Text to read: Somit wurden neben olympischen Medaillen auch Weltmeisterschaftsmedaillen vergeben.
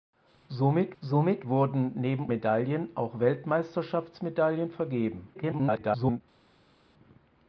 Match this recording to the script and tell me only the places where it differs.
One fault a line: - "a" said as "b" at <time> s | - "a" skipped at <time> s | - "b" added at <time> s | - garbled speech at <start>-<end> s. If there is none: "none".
- "somit" added at 1.0 s
- "olympischen" skipped at 2.3 s
- garbled speech at 5.3-6.2 s